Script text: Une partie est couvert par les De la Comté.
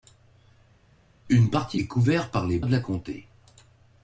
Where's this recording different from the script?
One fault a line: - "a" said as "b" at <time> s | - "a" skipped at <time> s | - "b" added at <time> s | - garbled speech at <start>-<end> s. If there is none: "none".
none